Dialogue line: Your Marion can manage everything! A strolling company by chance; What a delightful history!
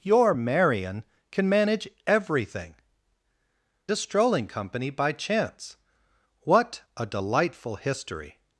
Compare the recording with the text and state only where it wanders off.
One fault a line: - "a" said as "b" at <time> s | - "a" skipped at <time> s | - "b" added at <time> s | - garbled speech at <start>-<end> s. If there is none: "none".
none